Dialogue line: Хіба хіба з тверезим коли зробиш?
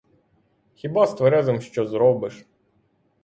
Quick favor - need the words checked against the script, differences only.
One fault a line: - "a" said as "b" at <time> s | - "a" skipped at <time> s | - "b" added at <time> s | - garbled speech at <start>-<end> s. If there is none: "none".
- "хіба" skipped at 1.1 s
- "коли" said as "що" at 1.6 s